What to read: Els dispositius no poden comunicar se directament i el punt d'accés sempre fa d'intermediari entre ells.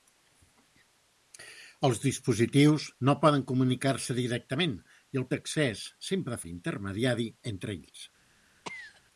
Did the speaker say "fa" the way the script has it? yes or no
no